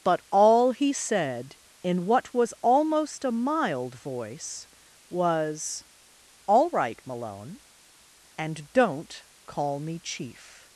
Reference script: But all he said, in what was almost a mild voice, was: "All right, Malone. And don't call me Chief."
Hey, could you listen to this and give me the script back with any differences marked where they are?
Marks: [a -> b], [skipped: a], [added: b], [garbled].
But all he said, in what was almost a mild voice, was: "All right, Malone. And don't call me Chief."